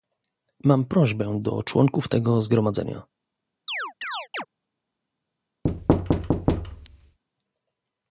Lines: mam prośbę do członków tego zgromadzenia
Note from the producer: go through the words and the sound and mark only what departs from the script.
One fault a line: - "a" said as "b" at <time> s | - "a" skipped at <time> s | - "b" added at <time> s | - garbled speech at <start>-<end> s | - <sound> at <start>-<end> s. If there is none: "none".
- chirp at 3.7-4.5 s
- thud at 5.6-7.2 s